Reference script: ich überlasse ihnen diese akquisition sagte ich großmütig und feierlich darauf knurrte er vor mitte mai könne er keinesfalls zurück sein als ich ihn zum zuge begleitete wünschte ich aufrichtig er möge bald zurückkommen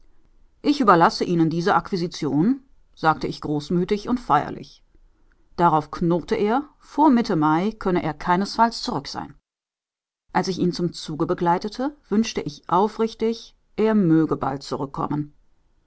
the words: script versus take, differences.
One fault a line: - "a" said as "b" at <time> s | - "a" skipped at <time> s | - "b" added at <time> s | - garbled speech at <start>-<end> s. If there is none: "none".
none